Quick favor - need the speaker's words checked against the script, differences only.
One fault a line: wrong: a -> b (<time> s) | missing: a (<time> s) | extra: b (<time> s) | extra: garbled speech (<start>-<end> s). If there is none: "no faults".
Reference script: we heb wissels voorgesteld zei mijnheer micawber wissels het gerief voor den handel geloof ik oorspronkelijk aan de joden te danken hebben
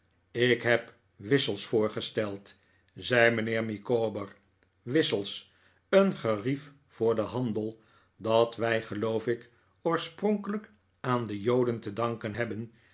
wrong: we -> ik (0.3 s)
wrong: het -> een (5.9 s)
extra: dat wij (8.2 s)